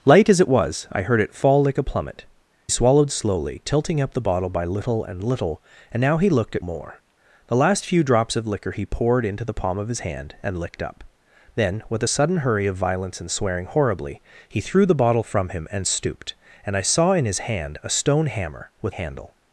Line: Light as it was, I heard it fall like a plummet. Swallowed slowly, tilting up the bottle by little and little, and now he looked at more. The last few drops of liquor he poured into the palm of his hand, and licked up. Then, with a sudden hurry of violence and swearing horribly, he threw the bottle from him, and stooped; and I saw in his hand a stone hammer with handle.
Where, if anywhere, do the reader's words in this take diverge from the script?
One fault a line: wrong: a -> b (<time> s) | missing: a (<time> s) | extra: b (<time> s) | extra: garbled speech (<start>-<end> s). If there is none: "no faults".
no faults